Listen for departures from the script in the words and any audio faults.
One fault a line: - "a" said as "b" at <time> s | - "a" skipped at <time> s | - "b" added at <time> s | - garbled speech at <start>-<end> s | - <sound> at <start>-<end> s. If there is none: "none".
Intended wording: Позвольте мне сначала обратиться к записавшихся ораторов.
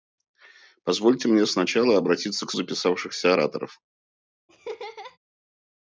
- laugh at 4.5-5.2 s